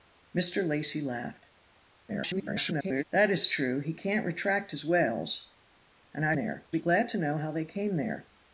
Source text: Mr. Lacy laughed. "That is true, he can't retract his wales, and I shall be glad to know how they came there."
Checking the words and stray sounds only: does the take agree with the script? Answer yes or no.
no